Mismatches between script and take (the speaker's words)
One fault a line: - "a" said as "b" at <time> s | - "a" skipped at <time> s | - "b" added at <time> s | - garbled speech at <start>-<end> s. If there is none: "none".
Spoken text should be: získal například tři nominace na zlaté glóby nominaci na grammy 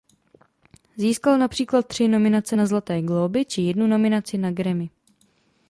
- "či jednu" added at 3.4 s